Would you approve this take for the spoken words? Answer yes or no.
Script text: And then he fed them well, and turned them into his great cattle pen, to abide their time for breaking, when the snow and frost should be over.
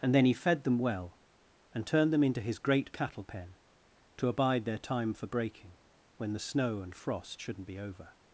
no